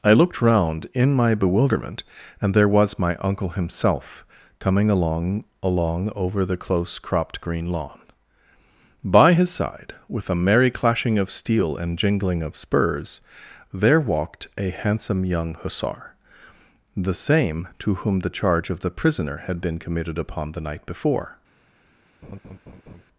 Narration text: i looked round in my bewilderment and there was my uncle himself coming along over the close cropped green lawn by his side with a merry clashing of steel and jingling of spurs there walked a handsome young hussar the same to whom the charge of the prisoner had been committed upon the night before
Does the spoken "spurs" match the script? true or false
true